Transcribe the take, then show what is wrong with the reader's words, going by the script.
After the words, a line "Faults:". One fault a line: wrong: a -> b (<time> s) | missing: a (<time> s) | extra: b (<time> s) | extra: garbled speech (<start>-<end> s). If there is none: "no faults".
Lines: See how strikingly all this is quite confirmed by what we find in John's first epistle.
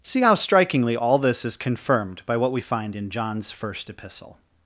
See how strikingly all this is confirmed by what we find in John's first epistle.
Faults:
missing: quite (1.6 s)